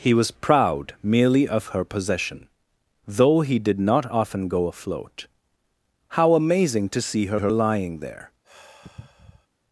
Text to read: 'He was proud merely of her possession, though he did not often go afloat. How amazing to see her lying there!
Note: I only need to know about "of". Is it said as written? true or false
true